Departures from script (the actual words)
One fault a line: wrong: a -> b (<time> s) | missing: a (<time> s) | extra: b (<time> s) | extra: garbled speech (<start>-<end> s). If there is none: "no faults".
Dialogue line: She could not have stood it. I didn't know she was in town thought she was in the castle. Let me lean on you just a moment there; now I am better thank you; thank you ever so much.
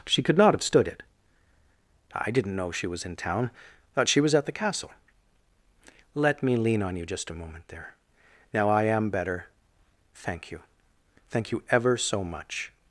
wrong: in -> at (4.3 s)